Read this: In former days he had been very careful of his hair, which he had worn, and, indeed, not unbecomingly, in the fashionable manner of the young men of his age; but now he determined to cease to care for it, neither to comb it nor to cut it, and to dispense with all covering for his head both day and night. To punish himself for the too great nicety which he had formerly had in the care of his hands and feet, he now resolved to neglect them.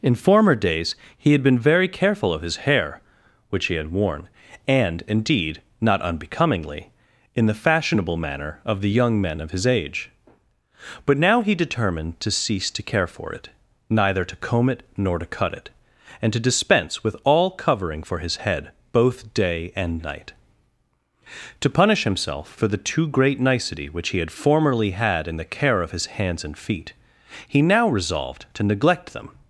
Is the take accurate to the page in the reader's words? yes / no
yes